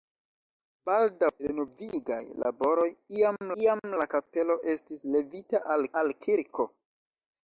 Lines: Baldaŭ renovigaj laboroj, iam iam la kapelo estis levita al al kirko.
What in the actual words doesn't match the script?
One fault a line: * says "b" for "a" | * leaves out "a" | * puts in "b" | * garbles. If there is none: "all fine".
all fine